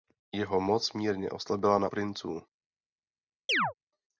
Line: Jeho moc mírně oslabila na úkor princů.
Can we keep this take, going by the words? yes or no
no